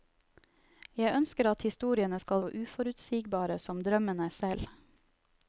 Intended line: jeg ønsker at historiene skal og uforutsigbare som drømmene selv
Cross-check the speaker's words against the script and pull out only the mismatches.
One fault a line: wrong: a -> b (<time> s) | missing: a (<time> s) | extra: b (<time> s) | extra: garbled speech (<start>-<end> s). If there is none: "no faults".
no faults